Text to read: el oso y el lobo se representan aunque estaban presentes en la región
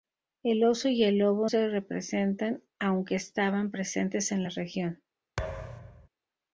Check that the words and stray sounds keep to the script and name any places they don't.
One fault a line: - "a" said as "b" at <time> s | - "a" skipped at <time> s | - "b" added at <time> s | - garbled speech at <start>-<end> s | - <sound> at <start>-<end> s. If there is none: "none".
- thud at 5.4-6.1 s